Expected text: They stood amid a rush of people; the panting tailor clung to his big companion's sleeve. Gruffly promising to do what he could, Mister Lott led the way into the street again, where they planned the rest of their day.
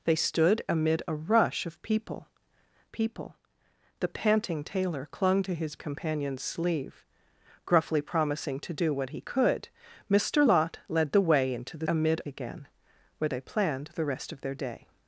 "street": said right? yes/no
no